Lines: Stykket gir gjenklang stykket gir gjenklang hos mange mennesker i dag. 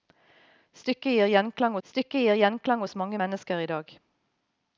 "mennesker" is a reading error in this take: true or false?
false